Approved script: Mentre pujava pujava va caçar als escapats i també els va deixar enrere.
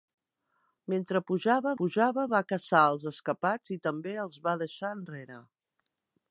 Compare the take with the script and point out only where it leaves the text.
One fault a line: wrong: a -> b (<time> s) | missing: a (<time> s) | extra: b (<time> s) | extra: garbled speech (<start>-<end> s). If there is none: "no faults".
no faults